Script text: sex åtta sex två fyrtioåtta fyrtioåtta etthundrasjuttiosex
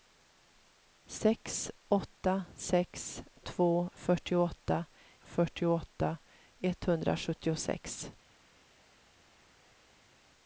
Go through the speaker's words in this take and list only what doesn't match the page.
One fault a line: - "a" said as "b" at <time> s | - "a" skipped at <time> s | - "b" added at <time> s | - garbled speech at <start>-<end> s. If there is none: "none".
none